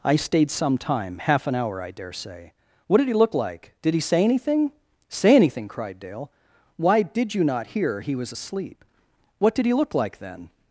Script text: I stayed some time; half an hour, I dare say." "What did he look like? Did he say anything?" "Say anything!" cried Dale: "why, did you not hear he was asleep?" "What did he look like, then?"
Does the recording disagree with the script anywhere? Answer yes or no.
no